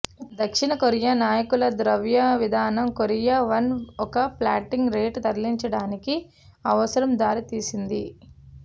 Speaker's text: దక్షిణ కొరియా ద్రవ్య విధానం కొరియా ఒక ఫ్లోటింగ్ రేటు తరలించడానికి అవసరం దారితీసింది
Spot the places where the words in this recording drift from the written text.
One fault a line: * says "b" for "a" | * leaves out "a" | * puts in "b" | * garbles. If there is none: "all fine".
* puts in "నాయకుల"
* puts in "వన్"